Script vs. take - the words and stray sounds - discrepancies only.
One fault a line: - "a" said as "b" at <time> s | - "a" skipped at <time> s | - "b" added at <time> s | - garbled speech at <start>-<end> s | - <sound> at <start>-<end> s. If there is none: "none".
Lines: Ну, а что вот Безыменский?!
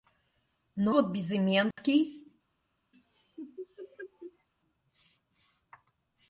- "а что" skipped at 0.9 s
- dropout at 1.7-1.8 s
- laugh at 2.9-4.5 s